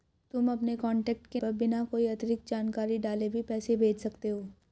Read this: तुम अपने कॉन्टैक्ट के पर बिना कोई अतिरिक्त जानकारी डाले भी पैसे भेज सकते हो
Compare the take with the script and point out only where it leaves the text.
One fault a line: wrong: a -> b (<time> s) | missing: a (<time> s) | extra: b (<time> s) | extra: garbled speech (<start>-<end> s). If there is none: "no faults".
no faults